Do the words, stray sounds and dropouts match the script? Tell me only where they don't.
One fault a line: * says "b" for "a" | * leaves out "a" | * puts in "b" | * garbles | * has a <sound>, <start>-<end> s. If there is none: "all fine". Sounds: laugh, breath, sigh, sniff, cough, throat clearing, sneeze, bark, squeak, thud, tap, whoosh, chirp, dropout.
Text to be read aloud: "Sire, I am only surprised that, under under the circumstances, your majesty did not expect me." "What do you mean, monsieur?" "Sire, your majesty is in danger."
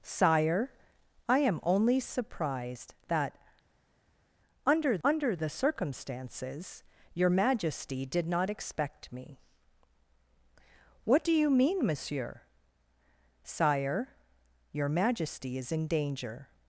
all fine